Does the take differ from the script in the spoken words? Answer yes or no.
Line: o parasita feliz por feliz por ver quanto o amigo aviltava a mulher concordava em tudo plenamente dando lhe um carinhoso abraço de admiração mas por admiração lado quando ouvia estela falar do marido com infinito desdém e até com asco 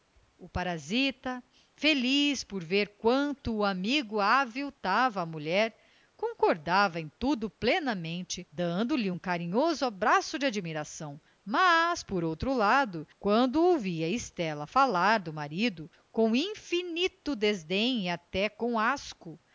yes